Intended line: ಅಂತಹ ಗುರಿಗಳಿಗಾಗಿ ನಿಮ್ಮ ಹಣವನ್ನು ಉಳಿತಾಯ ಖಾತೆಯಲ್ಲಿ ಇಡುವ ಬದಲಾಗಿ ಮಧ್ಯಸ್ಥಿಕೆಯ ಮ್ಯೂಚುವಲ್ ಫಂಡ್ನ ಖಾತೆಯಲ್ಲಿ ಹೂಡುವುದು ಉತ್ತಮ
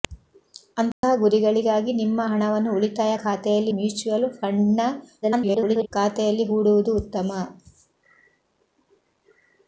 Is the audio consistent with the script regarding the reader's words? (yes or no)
no